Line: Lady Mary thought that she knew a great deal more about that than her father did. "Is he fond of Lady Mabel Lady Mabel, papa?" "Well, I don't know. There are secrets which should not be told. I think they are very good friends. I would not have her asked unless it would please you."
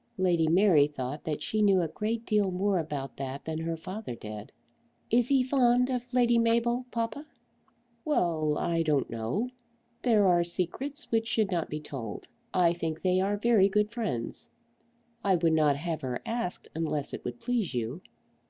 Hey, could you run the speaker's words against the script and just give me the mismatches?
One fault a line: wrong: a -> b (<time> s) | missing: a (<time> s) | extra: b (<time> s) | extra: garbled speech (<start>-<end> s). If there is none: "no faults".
missing: Lady Mabel (6.9 s)